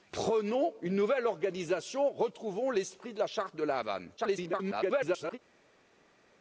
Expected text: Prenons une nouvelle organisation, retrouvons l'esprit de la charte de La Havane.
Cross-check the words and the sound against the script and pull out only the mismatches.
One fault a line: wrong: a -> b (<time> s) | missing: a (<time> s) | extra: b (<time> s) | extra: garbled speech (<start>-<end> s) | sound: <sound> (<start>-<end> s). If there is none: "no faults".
extra: garbled speech (4.2-5.4 s)